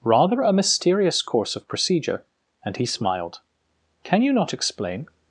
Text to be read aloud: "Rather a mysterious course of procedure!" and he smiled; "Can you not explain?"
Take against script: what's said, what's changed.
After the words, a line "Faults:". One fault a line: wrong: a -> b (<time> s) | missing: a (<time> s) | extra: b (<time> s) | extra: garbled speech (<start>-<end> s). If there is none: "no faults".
"Rather a mysterious course of procedure!" and he smiled; "Can you not explain?"
Faults:
no faults